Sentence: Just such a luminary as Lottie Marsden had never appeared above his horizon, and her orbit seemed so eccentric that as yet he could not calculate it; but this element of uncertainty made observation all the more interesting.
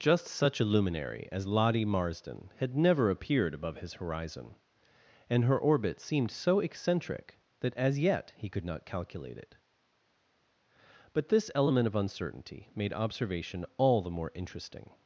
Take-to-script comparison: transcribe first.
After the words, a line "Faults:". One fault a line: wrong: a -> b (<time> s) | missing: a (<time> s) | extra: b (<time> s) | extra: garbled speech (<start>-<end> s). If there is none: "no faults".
Just such a luminary as Lottie Marsden had never appeared above his horizon, and her orbit seemed so eccentric that as yet he could not calculate it; but this element of uncertainty made observation all the more interesting.
Faults:
no faults